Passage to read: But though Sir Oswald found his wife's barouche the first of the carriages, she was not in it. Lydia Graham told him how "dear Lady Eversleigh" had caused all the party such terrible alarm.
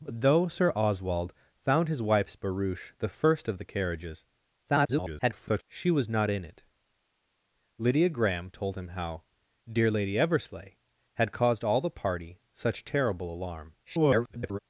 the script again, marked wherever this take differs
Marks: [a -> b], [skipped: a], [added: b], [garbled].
But though Sir Oswald found his wife's barouche the first of the carriages, [garbled] she was not in it. Lydia Graham told him how "dear Lady Eversleigh" had caused all the party such terrible alarm. [garbled]